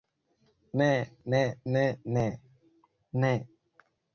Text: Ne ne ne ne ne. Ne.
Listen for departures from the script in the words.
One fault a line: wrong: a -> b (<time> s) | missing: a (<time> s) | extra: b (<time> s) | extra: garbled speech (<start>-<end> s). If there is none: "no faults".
missing: Ne (3.3 s)